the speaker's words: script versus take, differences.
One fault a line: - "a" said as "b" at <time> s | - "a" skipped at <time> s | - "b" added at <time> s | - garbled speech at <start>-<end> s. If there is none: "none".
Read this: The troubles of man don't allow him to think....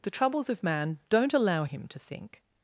none